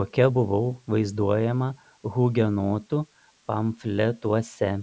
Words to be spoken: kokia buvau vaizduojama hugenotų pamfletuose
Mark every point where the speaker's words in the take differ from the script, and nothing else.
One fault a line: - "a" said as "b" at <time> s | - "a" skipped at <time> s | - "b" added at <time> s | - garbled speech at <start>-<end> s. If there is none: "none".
none